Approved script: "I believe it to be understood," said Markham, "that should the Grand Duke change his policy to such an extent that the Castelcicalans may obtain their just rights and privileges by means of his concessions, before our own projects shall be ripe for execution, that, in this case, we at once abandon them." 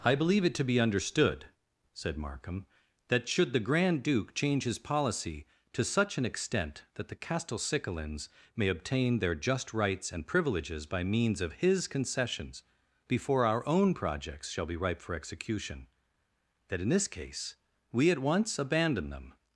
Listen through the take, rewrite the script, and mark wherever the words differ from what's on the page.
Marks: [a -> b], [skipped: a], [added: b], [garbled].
"I believe it to be understood," said Markham, "that should the Grand Duke change his policy to such an extent that the Castelcicalans may obtain their just rights and privileges by means of his concessions, before our own projects shall be ripe for execution, that, in this case, we at once abandon them."